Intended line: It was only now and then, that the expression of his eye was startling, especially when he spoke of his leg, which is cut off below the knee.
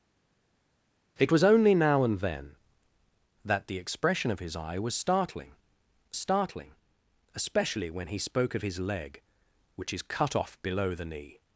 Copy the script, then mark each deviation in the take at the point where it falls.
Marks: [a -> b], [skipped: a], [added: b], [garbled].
It was only now and then, that the expression of his eye was startling, [added: startling] especially when he spoke of his leg, which is cut off below the knee.